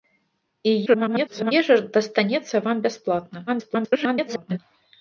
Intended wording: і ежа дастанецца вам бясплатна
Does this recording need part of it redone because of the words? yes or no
yes